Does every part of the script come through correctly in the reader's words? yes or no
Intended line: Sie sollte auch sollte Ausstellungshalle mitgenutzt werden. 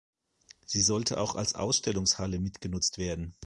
no